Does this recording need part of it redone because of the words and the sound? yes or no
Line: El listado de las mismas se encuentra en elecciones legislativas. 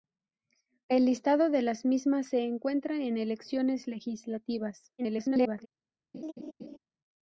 yes